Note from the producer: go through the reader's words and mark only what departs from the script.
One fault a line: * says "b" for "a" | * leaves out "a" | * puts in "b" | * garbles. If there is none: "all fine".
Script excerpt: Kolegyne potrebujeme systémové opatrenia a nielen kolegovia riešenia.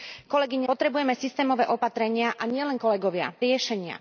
all fine